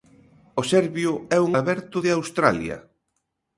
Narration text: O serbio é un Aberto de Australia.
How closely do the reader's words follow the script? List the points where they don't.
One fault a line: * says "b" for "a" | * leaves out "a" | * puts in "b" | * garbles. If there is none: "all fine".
all fine